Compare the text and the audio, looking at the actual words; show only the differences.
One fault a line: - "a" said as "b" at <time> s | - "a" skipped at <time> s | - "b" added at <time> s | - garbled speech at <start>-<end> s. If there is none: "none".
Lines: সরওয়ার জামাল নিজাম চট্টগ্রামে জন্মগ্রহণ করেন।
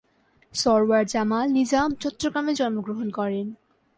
none